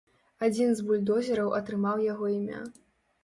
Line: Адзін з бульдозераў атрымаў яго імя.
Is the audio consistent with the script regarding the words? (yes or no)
yes